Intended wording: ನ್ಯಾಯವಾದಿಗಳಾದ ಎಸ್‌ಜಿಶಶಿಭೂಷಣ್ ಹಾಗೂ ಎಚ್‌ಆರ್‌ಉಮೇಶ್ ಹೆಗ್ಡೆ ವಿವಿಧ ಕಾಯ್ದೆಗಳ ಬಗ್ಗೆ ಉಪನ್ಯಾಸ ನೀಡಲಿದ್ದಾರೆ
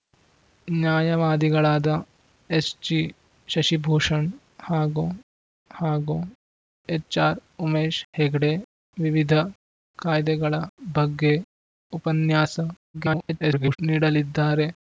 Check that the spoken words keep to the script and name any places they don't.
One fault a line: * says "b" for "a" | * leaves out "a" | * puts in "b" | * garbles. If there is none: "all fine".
* puts in "ಹಾಗೂ"
* garbles